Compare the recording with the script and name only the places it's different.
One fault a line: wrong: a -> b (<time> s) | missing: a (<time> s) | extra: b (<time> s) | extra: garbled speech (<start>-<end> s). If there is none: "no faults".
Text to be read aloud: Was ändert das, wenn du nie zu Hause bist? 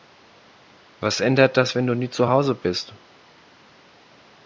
no faults